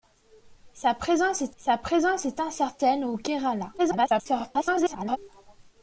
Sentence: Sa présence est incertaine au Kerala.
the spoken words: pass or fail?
fail